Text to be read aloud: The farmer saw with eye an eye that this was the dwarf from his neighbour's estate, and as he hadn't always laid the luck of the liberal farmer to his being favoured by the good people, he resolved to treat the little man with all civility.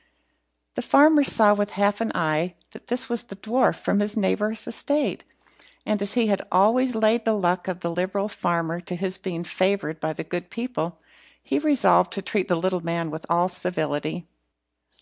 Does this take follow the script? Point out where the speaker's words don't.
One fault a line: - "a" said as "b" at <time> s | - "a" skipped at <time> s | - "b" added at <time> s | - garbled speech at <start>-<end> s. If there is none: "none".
- "eye" said as "half" at 1.7 s
- "hadn't" said as "had" at 6.2 s